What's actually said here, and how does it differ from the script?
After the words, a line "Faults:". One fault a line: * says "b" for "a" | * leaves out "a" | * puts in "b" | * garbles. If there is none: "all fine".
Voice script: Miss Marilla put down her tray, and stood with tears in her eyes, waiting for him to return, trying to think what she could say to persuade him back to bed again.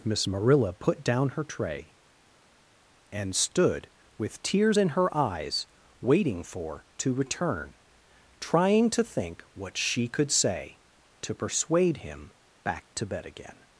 Miss Marilla put down her tray, and stood with tears in her eyes, waiting for to return, trying to think what she could say to persuade him back to bed again.
Faults:
* leaves out "him"